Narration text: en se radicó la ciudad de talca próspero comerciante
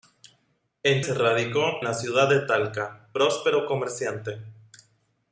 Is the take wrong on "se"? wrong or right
right